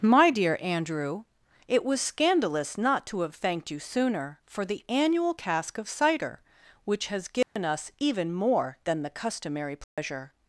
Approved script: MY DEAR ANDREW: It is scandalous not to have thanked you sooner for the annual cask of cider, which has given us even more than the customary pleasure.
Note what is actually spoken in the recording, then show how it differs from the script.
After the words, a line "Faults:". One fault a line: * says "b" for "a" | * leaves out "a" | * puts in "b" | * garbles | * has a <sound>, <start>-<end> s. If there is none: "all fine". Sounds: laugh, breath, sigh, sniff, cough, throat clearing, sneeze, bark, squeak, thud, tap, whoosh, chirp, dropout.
MY DEAR ANDREW: It was scandalous not to have thanked you sooner for the annual cask of cider, which has given us even more than the customary pleasure.
Faults:
* says "was" for "is"
* has a dropout, 7.4-7.6 s
* has a dropout, 9.8-10.0 s